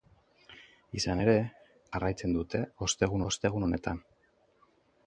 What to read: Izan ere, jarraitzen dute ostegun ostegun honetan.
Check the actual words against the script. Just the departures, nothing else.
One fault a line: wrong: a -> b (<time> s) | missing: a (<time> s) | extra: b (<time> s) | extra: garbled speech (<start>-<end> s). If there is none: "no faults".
no faults